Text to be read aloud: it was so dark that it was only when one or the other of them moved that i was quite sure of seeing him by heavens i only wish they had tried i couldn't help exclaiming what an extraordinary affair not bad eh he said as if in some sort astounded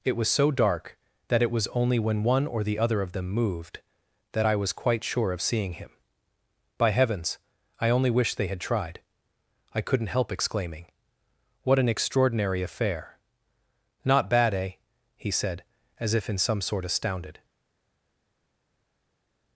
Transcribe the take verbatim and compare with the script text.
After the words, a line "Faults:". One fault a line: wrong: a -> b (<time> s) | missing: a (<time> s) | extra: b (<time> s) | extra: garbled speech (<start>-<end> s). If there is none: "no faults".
it was so dark that it was only when one or the other of them moved that i was quite sure of seeing him by heavens i only wish they had tried i couldn't help exclaiming what an extraordinary affair not bad eh he said as if in some sort astounded
Faults:
no faults